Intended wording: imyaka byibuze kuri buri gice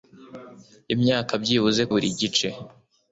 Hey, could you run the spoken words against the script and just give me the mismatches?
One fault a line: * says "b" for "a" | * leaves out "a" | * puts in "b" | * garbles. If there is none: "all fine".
* leaves out "kuri"